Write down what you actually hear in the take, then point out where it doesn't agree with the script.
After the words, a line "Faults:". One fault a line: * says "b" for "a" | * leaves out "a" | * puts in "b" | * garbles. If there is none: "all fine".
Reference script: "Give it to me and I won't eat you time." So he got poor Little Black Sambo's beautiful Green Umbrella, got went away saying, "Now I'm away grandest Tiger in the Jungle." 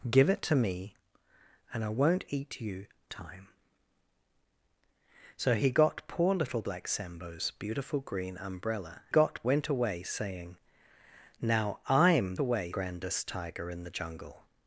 "Give it to me and I won't eat you time." So he got poor Little Black Sambo's beautiful Green Umbrella, got went away saying, "Now I'm away grandest Tiger in the Jungle."
Faults:
all fine